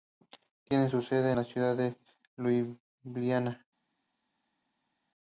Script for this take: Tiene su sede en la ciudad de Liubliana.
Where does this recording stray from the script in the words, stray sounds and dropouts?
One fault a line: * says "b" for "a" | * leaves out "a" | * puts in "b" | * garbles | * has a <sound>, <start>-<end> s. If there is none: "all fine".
all fine